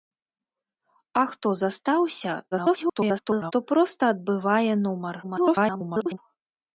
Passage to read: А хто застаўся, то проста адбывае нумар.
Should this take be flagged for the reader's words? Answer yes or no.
yes